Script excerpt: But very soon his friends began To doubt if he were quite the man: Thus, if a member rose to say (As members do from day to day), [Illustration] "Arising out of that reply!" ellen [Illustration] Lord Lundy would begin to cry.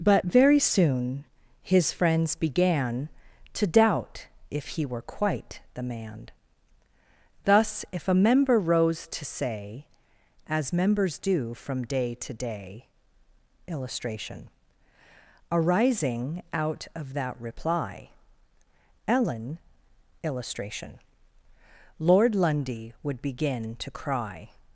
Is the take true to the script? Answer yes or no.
yes